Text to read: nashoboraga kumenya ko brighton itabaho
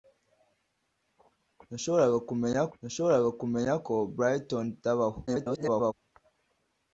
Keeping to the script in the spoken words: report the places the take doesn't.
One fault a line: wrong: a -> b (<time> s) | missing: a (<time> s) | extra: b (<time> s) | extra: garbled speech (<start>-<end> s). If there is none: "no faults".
extra: nashoboraga kumenya (2.8 s)
extra: garbled speech (5.3-5.9 s)